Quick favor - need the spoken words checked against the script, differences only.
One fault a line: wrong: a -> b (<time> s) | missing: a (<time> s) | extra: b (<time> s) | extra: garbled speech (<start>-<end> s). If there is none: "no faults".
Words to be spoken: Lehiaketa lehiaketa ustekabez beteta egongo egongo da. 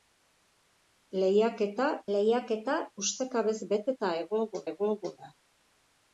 no faults